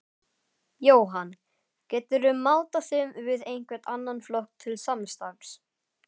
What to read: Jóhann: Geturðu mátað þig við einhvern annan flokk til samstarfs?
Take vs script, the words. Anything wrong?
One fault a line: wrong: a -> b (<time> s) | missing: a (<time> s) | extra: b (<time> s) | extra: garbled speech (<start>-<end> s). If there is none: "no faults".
no faults